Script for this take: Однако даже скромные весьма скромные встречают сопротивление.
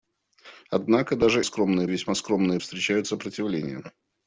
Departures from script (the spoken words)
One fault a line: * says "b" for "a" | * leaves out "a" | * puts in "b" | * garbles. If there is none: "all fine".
all fine